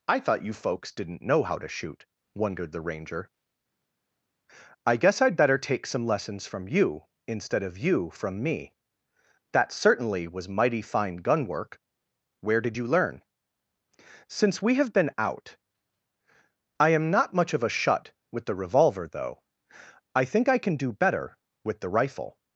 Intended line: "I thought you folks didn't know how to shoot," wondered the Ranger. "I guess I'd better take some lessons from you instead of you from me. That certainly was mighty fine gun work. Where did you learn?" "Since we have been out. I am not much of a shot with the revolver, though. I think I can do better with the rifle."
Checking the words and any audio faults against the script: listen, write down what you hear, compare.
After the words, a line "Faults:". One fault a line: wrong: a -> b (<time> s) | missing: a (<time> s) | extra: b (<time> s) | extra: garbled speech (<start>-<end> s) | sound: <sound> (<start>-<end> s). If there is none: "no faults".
"I thought you folks didn't know how to shoot," wondered the Ranger. "I guess I'd better take some lessons from you instead of you from me. That certainly was mighty fine gun work. Where did you learn?" "Since we have been out. I am not much of a shut with the revolver, though. I think I can do better with the rifle."
Faults:
wrong: shot -> shut (17.7 s)